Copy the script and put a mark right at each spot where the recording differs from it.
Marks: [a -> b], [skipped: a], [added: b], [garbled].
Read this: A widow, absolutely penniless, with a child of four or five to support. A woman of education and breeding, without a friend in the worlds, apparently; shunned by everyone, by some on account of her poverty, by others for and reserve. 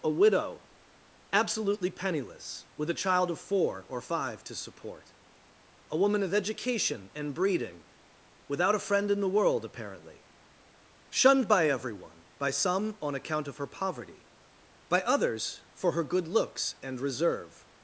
A widow, absolutely penniless, with a child of four or five to support. A woman of education and breeding, without a friend in the [worlds, -> world] apparently; shunned by everyone, by some on account of her poverty, by others for [added: her good looks] and reserve.